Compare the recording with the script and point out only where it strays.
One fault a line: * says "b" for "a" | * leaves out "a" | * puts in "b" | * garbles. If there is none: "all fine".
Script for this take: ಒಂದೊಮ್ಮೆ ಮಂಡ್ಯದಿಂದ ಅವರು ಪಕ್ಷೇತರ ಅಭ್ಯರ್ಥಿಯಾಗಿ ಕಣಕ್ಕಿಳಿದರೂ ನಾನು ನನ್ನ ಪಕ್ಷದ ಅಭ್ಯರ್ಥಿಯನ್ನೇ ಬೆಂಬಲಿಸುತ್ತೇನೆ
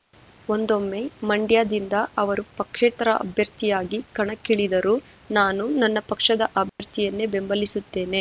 all fine